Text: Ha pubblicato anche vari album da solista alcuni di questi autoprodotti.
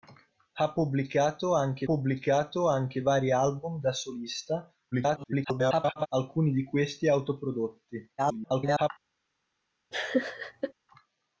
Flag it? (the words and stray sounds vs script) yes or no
yes